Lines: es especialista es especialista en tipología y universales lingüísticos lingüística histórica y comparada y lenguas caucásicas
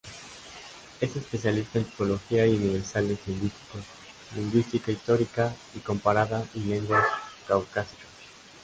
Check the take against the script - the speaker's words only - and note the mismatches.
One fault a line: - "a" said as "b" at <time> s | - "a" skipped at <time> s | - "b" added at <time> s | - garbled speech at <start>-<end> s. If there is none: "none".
- "es especialista" skipped at 1.8 s